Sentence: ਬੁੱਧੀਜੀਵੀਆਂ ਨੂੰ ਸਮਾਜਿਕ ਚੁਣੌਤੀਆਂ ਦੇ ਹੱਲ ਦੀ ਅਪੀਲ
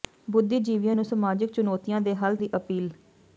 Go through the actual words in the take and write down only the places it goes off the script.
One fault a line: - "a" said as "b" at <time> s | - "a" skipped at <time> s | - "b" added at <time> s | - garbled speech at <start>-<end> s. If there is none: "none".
none